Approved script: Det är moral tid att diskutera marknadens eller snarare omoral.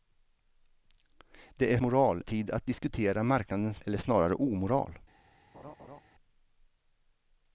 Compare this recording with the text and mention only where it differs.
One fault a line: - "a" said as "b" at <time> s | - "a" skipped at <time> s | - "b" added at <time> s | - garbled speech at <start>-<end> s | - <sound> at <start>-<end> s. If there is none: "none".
- laugh at 5.5-6.0 s